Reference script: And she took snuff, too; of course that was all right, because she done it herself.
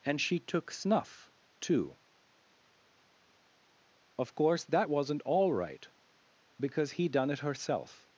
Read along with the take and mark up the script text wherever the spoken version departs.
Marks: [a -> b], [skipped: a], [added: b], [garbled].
And she took snuff, too; of course that [was -> wasn't] all right, because [she -> he] done it herself.